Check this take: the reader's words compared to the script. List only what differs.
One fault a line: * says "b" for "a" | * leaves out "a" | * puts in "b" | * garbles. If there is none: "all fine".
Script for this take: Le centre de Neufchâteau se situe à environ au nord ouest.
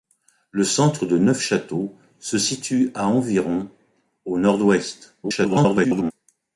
* garbles